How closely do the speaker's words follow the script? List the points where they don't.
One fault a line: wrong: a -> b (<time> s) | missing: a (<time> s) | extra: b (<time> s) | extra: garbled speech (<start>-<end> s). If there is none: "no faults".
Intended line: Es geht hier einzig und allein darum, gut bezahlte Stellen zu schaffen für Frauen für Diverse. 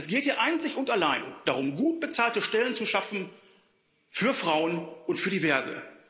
extra: und (5.0 s)